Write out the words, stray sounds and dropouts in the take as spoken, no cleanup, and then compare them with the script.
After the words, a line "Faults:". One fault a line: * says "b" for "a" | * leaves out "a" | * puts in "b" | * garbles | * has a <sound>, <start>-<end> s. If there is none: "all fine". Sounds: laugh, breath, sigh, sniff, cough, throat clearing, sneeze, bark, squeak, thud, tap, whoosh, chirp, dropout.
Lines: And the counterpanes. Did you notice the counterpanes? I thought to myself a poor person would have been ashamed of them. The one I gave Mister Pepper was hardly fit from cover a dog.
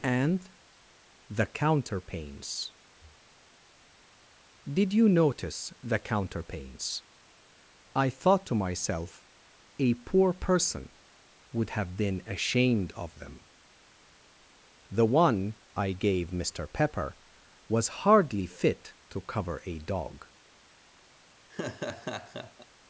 And the counterpanes. Did you notice the counterpanes? I thought to myself a poor person would have been ashamed of them. The one I gave Mister Pepper was hardly fit to cover a dog.
Faults:
* says "to" for "from"
* has a laugh, 21.5-22.7 s